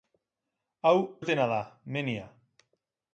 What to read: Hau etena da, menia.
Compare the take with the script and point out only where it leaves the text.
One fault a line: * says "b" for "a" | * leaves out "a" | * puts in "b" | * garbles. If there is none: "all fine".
all fine